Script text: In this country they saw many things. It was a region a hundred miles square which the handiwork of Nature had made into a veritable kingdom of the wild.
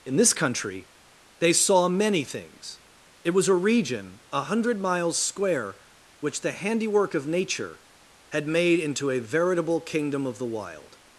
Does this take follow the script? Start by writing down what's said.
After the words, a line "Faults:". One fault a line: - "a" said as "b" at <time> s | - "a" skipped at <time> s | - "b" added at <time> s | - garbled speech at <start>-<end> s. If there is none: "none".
In this country they saw many things. It was a region a hundred miles square which the handiwork of Nature had made into a veritable kingdom of the wild.
Faults:
none